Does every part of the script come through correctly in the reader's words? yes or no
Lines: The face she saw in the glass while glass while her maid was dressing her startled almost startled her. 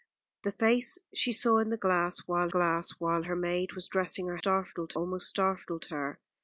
yes